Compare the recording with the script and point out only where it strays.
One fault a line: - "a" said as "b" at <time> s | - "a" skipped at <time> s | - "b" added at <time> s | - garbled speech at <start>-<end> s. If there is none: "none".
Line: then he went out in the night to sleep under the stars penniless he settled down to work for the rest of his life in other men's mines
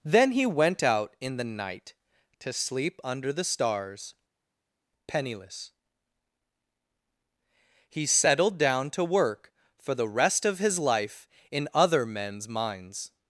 none